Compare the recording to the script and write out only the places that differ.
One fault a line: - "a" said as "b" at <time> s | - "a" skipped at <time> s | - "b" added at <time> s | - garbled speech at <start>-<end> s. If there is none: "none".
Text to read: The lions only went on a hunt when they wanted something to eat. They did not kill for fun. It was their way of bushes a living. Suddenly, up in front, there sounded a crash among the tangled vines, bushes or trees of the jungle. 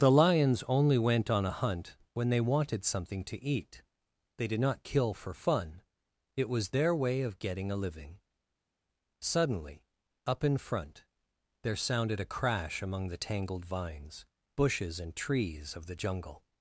- "bushes" said as "getting" at 7.4 s
- "or" said as "and" at 15.0 s